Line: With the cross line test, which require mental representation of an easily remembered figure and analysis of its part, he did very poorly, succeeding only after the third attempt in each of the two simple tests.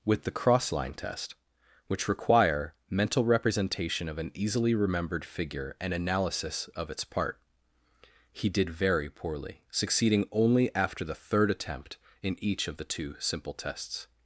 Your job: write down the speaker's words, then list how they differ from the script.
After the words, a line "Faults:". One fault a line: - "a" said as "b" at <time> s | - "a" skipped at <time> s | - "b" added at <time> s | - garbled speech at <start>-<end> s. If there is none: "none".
With the cross line test, which require mental representation of an easily remembered figure and analysis of its part, he did very poorly, succeeding only after the third attempt in each of the two simple tests.
Faults:
none